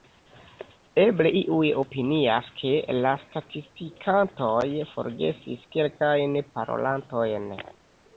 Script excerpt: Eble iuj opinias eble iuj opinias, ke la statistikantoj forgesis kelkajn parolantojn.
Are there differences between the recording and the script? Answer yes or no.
yes